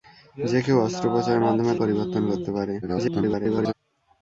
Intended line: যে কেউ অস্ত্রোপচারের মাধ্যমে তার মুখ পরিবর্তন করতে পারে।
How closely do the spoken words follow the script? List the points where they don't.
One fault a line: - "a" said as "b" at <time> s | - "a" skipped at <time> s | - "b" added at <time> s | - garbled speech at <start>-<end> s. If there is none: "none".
- "তার মুখ" skipped at 1.7 s
- garbled speech at 2.8-3.7 s